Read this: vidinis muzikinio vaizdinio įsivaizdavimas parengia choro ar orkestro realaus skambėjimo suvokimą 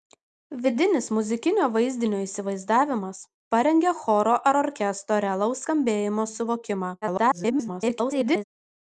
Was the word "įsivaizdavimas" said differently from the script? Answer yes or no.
no